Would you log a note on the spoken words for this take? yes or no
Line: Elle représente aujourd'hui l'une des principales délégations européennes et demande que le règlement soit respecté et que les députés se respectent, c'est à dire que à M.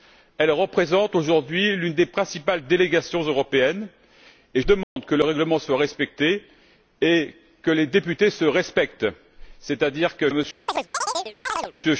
no